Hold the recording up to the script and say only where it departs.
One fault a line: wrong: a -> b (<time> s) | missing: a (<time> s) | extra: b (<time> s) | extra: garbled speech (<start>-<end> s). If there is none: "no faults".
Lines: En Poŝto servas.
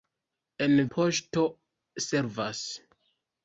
no faults